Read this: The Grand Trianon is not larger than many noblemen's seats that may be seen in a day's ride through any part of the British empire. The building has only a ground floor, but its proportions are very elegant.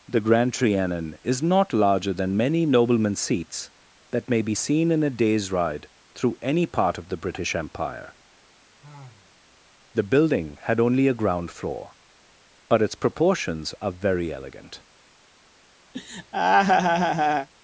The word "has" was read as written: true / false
false